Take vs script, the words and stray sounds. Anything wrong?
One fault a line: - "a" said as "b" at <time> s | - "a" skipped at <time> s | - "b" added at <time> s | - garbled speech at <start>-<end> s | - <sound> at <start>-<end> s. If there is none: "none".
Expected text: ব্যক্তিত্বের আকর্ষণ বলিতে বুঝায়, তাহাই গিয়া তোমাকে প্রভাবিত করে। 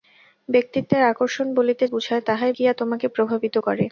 none